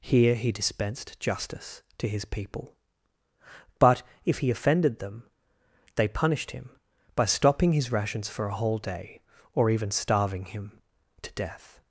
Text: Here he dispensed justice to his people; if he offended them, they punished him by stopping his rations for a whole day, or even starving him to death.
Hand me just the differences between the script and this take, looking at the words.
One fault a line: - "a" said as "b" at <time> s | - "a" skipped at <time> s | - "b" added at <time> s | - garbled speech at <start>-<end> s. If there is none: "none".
- "but" added at 3.8 s